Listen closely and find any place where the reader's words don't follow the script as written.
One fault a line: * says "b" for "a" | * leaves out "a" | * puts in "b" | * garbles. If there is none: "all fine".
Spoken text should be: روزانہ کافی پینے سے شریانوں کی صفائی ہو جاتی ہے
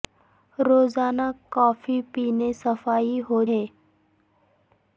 * leaves out "سے شریانوں کی"
* leaves out "جاتی"